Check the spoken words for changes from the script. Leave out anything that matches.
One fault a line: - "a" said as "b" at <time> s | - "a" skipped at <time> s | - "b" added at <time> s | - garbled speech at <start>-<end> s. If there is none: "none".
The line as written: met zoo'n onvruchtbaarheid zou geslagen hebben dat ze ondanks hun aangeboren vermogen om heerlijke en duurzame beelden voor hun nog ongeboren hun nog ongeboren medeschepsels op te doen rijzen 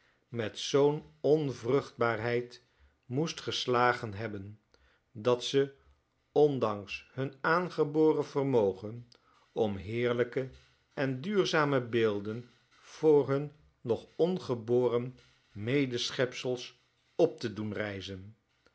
- "zou" said as "moest" at 3.0 s
- "hun nog ongeboren" skipped at 15.2 s